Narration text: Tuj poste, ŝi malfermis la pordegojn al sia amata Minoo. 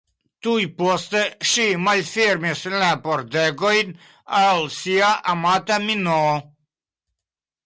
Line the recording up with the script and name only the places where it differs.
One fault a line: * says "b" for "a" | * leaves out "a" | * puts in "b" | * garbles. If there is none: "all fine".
all fine